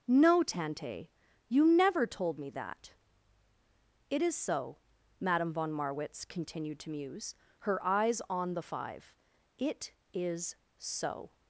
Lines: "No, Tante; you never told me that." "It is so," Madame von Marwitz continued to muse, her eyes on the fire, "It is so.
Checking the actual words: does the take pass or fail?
fail